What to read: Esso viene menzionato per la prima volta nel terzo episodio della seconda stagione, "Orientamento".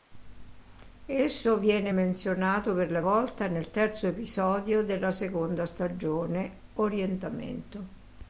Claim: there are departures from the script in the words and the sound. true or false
true